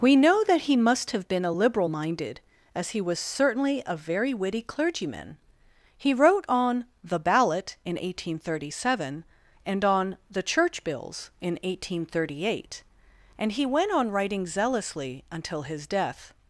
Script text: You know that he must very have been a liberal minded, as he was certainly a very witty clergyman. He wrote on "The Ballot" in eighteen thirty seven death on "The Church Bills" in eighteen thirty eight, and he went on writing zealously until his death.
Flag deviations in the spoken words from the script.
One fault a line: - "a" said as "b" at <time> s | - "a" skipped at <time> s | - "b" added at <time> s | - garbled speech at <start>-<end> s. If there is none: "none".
- "You" said as "We" at 0.0 s
- "very" skipped at 1.1 s
- "death" said as "and" at 9.7 s